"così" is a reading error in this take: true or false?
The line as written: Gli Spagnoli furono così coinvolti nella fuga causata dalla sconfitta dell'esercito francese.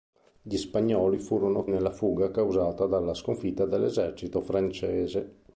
true